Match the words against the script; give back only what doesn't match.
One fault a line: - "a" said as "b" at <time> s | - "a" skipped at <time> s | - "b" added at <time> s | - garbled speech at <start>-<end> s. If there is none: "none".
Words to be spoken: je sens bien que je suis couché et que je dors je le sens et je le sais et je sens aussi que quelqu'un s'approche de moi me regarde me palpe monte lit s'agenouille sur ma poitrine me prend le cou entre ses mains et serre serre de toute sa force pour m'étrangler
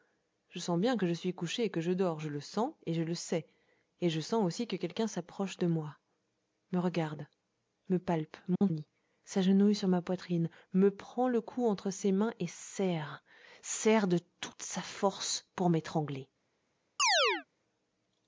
none